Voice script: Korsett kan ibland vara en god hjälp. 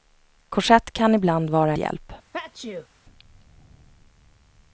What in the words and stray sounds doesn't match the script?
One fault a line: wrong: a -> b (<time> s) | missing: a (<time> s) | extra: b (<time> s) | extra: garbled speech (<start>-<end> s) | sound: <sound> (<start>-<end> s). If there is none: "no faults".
missing: en god (1.7 s)
sound: sneeze (2.3-2.9 s)